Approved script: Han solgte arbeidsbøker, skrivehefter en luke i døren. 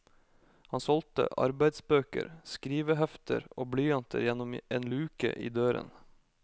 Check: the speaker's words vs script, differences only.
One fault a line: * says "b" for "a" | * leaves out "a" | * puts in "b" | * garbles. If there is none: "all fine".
* puts in "og blyanter gjennom"